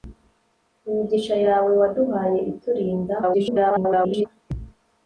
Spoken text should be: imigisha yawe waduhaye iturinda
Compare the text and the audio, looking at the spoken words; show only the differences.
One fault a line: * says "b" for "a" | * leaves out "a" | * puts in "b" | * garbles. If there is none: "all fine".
* garbles